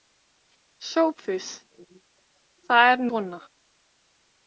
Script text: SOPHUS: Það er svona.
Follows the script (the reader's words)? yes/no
yes